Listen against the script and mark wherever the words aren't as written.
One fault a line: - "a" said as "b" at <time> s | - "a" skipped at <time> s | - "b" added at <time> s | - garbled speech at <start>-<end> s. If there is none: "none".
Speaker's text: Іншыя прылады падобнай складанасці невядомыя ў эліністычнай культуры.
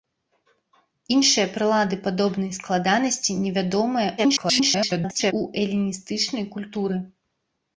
- garbled speech at 4.2-5.3 s